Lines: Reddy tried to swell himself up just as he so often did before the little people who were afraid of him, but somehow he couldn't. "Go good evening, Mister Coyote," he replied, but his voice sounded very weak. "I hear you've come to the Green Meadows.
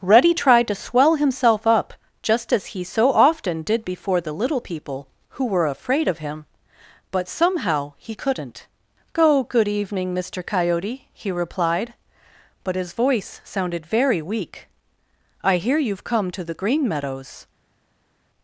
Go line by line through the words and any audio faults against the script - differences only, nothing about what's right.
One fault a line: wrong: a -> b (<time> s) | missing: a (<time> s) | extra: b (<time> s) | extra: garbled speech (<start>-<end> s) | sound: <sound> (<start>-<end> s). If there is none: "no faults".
no faults